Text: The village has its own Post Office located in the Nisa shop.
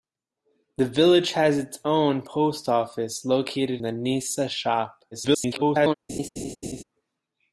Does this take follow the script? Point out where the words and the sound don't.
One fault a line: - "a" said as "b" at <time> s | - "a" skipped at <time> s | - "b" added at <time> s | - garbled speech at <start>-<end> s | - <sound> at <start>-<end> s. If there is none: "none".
- "in" skipped at 3.8 s
- garbled speech at 5.1-5.9 s
- laugh at 6.1-6.8 s